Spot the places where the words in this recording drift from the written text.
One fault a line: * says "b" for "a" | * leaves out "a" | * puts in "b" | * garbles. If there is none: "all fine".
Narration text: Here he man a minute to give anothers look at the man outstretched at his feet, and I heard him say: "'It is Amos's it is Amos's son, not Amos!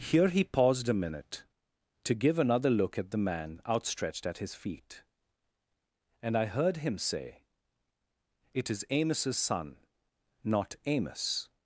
* says "paused" for "man"
* says "another" for "anothers"
* leaves out "it is Amos's"